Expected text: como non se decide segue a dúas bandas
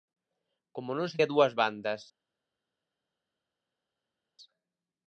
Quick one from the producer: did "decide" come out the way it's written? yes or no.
no